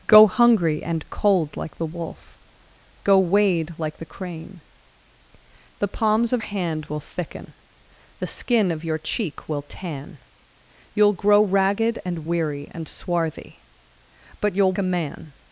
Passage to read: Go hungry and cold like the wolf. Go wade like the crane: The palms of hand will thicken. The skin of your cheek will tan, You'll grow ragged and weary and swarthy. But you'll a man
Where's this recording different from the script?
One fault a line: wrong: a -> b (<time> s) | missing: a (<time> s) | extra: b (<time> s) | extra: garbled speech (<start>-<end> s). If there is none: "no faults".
no faults